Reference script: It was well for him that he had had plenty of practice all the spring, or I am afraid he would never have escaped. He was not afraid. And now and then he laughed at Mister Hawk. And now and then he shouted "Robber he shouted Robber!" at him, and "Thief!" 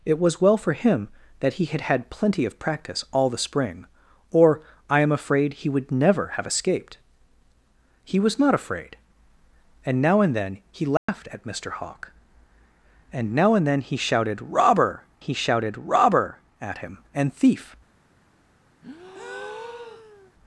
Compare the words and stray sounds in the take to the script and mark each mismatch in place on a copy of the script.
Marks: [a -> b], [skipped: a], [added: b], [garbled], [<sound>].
It was well for him that he had had plenty of practice all the spring, or I am afraid he would never have escaped. He was not afraid. And now and then he laughed [dropout] at Mister Hawk. And now and then he shouted "Robber he shouted Robber!" at him, and "Thief!" [breath]